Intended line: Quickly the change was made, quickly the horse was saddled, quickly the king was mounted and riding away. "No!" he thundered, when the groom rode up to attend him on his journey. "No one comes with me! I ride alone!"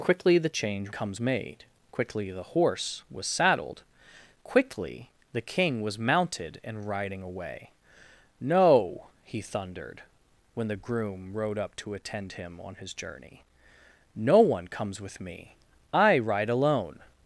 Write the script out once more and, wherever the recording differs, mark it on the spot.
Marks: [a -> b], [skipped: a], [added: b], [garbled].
Quickly the change [was -> comes] made, quickly the horse was saddled, quickly the king was mounted and riding away. "No!" he thundered, when the groom rode up to attend him on his journey. "No one comes with me! I ride alone!"